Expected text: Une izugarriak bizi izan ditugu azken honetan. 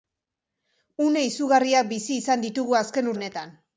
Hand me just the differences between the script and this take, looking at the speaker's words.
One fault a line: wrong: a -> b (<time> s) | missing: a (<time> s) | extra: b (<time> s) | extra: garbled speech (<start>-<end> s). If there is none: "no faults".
no faults